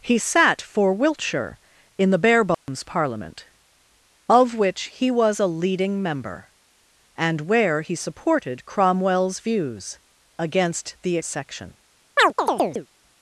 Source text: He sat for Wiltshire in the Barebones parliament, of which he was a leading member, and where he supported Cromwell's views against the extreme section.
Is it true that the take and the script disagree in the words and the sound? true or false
true